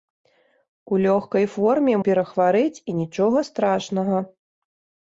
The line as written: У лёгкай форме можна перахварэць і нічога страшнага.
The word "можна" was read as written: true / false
false